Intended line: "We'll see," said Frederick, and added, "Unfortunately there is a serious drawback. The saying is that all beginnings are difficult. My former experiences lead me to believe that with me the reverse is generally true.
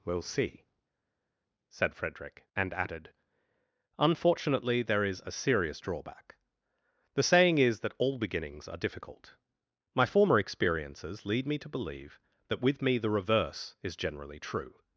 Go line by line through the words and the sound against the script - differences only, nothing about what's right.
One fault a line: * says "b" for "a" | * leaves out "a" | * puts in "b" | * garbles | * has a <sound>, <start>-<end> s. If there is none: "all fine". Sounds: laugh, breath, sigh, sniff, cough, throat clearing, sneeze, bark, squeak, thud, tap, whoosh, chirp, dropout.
all fine